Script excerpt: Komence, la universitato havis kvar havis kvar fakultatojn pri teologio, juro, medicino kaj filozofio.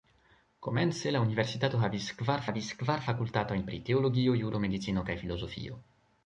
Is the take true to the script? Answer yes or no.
yes